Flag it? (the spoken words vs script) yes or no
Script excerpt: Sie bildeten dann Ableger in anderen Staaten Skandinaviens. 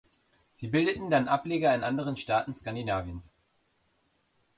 no